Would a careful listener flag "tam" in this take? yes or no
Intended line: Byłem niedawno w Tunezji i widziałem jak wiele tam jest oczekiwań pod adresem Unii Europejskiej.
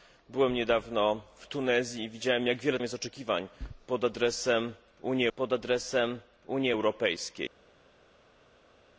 yes